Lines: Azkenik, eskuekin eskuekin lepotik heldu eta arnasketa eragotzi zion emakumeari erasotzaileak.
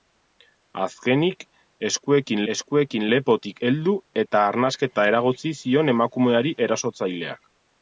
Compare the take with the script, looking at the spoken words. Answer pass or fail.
pass